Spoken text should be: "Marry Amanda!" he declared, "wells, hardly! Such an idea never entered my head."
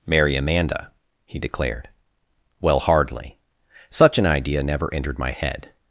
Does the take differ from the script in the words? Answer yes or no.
yes